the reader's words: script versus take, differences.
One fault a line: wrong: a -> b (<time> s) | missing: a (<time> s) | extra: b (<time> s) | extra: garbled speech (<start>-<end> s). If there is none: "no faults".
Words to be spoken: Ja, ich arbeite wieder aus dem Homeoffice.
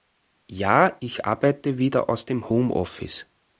no faults